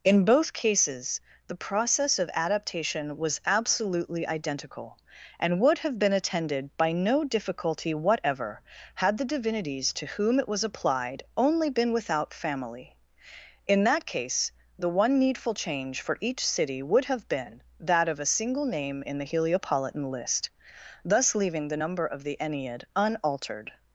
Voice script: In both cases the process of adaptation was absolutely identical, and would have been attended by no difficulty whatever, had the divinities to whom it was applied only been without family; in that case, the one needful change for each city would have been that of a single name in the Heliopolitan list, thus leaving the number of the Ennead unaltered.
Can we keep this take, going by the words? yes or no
yes